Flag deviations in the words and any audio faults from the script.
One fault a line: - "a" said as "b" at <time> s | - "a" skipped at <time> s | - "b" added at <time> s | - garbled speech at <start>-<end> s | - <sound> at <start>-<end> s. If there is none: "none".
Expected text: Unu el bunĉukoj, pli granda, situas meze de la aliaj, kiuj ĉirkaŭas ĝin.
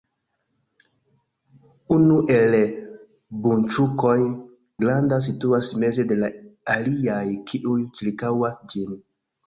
- "pli" skipped at 4.2 s